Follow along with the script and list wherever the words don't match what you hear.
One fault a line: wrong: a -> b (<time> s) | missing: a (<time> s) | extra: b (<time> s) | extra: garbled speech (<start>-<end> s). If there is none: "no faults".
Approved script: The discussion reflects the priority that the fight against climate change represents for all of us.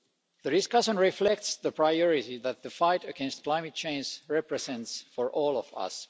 no faults